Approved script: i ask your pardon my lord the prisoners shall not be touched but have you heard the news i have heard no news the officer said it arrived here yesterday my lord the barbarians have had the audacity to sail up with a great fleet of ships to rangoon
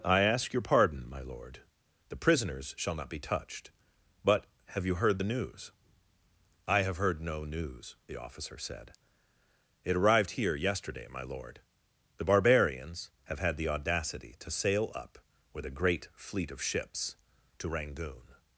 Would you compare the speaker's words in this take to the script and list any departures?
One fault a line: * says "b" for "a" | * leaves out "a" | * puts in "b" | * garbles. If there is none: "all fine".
all fine